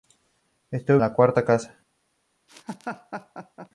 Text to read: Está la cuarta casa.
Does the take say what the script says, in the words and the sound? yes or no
no